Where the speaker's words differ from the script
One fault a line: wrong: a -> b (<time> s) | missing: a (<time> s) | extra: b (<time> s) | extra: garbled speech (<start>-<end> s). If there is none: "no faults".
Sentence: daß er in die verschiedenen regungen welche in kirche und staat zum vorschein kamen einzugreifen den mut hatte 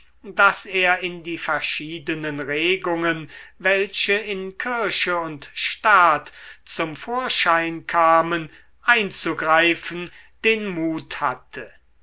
no faults